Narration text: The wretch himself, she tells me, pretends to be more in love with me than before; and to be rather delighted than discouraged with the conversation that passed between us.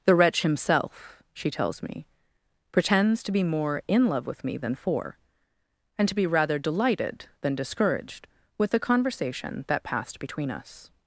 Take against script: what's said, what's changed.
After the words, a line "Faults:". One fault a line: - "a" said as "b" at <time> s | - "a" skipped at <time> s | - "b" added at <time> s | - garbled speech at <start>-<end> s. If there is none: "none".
The wretch himself, she tells me, pretends to be more in love with me than for; and to be rather delighted than discouraged with the conversation that passed between us.
Faults:
- "before" said as "for" at 4.8 s